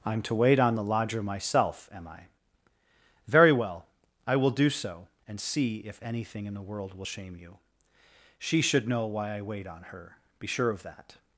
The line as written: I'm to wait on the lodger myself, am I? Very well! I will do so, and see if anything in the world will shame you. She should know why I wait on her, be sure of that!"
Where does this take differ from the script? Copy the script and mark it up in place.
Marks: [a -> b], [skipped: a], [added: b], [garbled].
I'm to wait on the lodger myself, am I? Very well! I will do so, and see if anything in the world will shame you. She should know why I wait on her, be sure of that!"